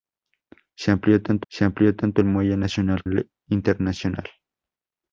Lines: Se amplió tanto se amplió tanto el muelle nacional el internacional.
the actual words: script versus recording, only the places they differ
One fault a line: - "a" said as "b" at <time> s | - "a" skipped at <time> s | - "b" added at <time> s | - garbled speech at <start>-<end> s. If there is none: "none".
none